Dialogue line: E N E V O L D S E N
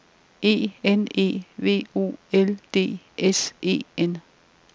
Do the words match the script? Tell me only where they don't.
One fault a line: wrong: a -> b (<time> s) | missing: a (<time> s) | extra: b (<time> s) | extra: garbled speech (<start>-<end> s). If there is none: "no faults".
no faults